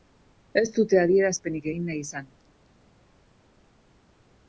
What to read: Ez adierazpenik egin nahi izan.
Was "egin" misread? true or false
false